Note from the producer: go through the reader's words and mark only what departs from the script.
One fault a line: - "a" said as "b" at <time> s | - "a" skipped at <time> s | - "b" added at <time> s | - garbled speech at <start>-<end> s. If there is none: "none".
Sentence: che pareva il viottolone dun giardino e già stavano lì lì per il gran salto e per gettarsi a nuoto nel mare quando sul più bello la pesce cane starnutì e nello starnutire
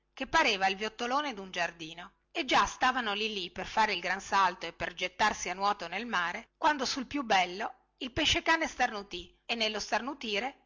- "fare" added at 3.7 s
- "la" said as "il" at 8.0 s